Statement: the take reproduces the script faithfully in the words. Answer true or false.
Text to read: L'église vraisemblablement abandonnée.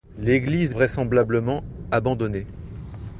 true